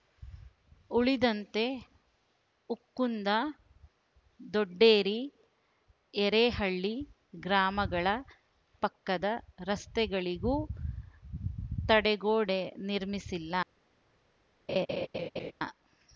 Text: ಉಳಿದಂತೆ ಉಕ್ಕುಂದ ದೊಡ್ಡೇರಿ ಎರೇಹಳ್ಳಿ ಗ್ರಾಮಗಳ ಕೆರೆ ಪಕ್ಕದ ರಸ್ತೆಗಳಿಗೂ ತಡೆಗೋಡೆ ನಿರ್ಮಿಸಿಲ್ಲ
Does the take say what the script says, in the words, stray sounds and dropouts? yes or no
no